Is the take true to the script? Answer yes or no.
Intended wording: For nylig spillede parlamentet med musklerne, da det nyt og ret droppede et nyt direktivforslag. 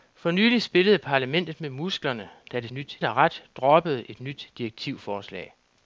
yes